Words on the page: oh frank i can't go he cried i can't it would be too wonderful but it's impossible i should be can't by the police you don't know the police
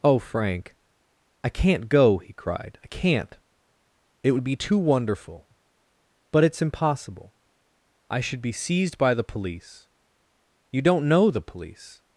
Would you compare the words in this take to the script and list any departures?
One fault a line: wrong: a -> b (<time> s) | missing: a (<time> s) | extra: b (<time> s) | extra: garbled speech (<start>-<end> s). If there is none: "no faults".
wrong: can't -> seized (8.5 s)